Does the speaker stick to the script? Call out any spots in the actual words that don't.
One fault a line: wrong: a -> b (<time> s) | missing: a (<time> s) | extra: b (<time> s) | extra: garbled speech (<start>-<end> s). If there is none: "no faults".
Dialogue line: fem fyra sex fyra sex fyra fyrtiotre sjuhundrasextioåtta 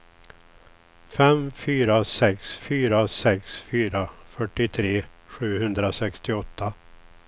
no faults